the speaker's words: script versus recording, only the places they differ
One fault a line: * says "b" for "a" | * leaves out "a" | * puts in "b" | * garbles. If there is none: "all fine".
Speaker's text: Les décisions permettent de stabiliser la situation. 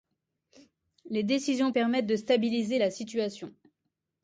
all fine